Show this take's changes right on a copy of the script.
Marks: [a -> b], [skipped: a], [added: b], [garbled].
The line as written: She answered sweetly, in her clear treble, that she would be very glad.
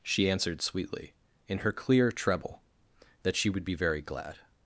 She answered sweetly, in her clear treble, that she would be very glad.